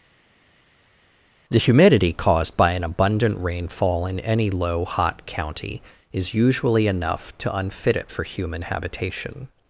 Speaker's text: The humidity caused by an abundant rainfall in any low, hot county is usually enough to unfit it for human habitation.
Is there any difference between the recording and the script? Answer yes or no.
no